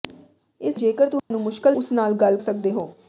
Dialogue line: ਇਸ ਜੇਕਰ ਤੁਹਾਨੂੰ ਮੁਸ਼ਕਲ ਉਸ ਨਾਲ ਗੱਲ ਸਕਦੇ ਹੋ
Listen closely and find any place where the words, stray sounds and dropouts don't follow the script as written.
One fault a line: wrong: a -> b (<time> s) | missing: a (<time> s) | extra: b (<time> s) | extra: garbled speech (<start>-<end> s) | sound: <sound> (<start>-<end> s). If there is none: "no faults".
sound: dropout (1.2-1.3 s)